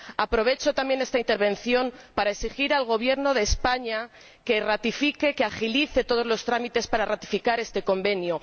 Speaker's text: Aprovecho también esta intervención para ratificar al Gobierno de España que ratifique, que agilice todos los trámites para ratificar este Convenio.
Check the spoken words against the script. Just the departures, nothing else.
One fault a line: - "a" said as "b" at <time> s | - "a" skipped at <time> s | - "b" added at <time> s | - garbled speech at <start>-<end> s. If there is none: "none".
- "ratificar" said as "exigir" at 2.3 s